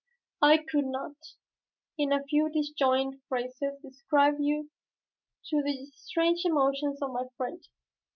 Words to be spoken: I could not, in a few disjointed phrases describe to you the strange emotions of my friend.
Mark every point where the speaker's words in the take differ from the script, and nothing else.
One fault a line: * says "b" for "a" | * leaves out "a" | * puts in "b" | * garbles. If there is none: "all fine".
all fine